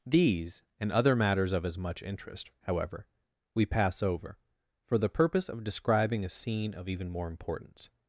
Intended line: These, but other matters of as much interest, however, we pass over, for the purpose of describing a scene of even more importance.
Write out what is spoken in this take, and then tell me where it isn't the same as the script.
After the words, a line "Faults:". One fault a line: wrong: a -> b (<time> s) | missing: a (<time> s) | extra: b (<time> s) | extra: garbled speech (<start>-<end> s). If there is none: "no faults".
These, and other matters of as much interest, however, we pass over, for the purpose of describing a scene of even more importance.
Faults:
wrong: but -> and (0.8 s)